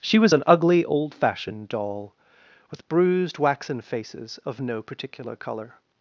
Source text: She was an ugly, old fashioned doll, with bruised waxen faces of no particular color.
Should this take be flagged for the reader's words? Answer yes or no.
no